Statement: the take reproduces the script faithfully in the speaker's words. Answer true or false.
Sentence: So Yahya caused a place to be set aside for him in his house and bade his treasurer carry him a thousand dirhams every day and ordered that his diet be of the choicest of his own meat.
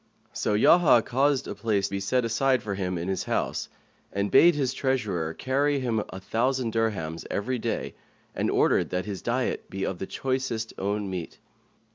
false